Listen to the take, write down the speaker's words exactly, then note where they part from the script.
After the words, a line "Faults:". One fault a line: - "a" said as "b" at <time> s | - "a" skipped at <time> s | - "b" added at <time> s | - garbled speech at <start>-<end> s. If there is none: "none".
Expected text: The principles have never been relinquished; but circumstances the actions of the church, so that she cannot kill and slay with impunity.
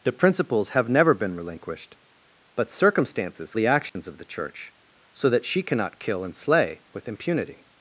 The principles have never been relinquished; but circumstances the actions of the church, so that she cannot kill and slay with impunity.
Faults:
none